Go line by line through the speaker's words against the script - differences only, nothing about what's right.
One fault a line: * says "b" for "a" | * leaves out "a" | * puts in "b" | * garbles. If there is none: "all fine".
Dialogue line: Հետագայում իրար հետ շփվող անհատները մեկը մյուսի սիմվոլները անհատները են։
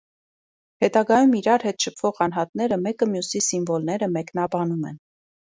* says "մեկնաբանում" for "անհատները"